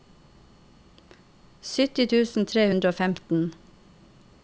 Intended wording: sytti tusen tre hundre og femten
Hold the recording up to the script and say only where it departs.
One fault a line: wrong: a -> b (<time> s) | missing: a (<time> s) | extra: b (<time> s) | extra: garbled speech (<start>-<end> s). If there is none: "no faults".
no faults